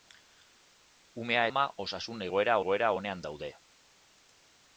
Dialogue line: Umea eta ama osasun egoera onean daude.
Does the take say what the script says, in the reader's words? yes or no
no